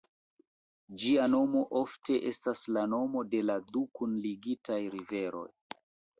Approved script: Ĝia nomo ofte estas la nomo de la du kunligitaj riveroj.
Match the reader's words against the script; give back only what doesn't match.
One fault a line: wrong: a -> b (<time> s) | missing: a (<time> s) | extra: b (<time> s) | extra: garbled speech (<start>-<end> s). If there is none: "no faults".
no faults